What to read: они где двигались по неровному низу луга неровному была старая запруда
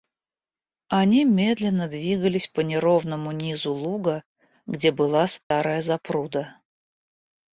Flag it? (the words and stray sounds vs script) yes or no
yes